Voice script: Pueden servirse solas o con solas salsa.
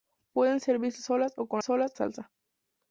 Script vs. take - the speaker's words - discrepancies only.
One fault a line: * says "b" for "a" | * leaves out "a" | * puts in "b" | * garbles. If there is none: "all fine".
all fine